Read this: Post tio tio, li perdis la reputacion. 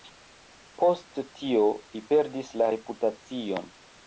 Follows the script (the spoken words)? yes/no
no